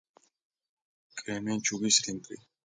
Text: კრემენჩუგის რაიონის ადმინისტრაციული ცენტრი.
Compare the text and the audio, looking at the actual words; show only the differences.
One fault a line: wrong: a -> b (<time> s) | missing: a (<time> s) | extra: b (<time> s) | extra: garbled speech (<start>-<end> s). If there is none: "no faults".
missing: რაიონის ადმინისტრაციული (2.0 s)